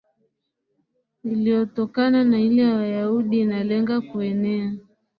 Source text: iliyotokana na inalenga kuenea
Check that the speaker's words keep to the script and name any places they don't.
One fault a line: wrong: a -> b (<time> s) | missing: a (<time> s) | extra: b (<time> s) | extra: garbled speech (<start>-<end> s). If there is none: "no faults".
extra: ile ya Wayahudi (2.4 s)